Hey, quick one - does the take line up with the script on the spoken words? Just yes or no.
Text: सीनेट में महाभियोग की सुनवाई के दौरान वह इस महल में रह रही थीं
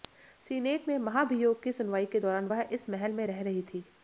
yes